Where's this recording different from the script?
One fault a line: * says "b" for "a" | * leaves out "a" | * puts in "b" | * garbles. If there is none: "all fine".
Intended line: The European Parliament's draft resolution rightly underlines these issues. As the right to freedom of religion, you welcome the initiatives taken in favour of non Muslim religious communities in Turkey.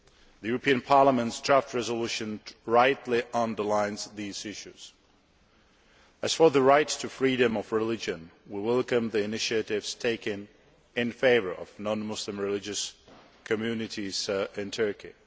* puts in "for"
* says "we" for "you"